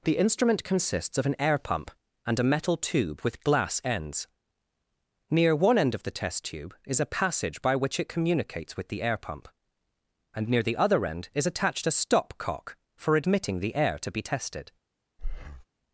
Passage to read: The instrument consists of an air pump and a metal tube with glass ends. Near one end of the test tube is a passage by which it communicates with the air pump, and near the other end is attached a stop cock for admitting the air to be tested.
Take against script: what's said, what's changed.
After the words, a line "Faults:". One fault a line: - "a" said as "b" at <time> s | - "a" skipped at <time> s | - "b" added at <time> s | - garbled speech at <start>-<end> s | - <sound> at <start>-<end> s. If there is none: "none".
The instrument consists of an air pump and a metal tube with glass ends. Near one end of the test tube is a passage by which it communicates with the air pump, and near the other end is attached a stop cock for admitting the air to be tested.
Faults:
- breath at 15.2-15.6 s